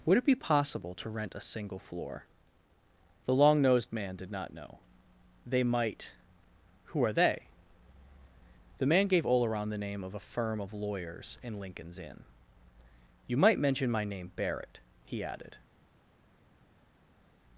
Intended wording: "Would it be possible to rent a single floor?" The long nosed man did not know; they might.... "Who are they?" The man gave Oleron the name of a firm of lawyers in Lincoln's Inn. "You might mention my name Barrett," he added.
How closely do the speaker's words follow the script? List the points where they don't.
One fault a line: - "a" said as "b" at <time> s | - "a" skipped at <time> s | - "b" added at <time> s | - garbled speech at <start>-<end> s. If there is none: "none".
none